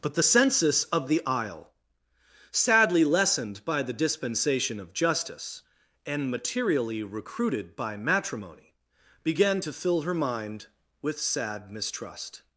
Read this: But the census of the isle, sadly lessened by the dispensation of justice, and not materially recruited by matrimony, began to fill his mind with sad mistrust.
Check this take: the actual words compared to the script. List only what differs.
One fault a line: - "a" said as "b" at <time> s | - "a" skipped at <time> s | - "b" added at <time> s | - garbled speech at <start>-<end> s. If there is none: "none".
- "not" skipped at 6.3 s
- "his" said as "her" at 10.0 s